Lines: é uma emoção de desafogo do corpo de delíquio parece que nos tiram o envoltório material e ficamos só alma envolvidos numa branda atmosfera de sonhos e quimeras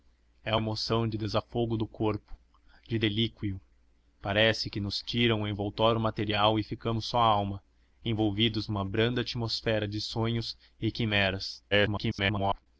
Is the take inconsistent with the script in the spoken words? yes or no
yes